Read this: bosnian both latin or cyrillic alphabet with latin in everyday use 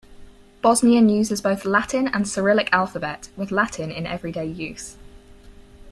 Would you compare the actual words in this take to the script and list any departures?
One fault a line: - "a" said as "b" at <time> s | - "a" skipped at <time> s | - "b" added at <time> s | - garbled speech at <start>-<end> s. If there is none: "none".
- "uses" added at 1.1 s
- "or" said as "and" at 2.1 s